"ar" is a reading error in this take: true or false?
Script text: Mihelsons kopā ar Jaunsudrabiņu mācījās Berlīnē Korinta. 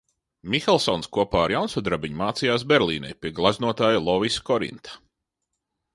false